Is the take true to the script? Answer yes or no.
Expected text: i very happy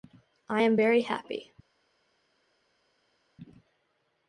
no